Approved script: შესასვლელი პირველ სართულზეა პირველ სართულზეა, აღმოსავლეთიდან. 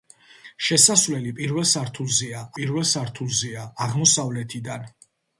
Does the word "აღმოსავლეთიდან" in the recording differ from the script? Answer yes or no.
no